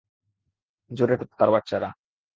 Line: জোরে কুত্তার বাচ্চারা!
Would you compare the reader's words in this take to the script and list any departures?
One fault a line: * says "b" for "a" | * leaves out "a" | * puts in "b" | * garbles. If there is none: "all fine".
all fine